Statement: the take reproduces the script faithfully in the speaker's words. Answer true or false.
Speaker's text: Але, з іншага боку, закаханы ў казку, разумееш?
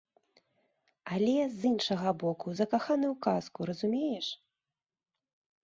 true